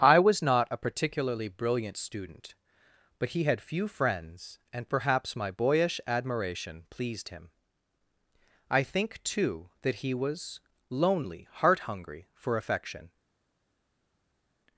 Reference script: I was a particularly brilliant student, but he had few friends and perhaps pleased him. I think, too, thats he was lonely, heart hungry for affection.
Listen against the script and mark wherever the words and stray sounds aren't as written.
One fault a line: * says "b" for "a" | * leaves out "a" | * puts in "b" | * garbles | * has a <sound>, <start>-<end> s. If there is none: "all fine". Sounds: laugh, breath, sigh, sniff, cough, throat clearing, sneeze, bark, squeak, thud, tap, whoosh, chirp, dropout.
* puts in "not"
* puts in "my boyish admiration"
* says "that" for "thats"